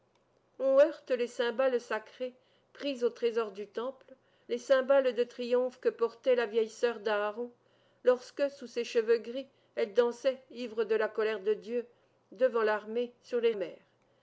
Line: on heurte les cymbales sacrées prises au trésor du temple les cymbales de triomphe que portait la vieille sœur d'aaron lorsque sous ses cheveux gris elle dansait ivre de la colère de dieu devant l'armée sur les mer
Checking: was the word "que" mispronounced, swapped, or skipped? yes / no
no